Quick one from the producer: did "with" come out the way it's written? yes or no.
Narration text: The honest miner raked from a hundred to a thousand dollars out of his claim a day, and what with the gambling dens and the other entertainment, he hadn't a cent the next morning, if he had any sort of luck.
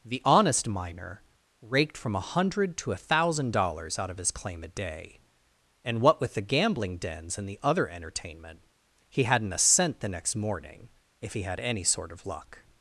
yes